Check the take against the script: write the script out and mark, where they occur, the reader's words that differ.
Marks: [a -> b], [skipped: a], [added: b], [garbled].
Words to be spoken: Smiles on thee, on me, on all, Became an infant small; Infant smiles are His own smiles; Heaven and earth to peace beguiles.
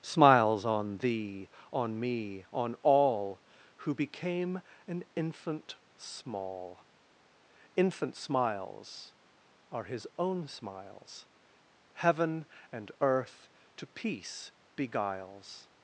Smiles on thee, on me, on all, [added: Who] Became an infant small; Infant smiles are His own smiles; Heaven and earth to peace beguiles.